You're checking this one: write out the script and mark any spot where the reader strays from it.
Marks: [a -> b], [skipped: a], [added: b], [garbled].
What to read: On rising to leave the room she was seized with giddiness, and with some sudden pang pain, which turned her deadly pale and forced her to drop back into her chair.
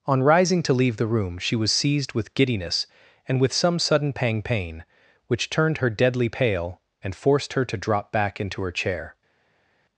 On rising to leave the room she was seized with giddiness, and with some sudden pang pain, which turned her deadly pale and forced her to drop back into her chair.